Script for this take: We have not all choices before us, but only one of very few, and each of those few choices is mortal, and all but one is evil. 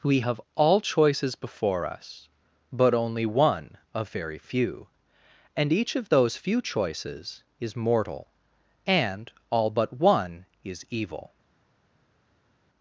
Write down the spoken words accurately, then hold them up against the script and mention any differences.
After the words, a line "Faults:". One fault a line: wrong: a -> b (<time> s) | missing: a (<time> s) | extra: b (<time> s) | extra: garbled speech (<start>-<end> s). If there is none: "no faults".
We have all choices before us, but only one of very few, and each of those few choices is mortal, and all but one is evil.
Faults:
missing: not (0.4 s)